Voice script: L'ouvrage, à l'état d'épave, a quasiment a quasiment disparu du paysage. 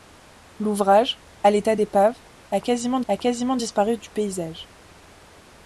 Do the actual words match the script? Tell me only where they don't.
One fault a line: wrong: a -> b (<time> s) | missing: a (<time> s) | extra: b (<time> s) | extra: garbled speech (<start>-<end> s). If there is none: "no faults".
no faults